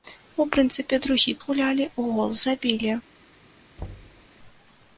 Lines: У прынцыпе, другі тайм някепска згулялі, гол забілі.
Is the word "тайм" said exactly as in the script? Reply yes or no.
no